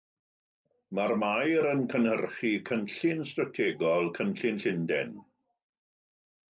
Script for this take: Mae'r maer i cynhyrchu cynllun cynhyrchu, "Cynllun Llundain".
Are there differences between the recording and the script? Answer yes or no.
yes